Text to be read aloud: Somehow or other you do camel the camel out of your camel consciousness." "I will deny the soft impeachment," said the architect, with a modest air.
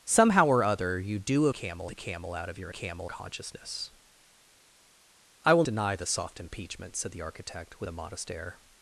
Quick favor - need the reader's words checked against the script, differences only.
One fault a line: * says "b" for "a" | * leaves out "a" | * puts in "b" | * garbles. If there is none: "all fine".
all fine